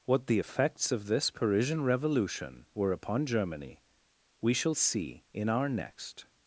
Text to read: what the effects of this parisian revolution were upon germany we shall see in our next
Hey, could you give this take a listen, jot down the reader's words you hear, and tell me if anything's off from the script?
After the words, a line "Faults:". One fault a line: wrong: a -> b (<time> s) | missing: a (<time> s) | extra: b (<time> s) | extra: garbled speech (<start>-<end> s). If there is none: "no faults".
what the effects of this parisian revolution were upon germany we shall see in our next
Faults:
no faults